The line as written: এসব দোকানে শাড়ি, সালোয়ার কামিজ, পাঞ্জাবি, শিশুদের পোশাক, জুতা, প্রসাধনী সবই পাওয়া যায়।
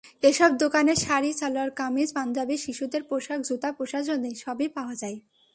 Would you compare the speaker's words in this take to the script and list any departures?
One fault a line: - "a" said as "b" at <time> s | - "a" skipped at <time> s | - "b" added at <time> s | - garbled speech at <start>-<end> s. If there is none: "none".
none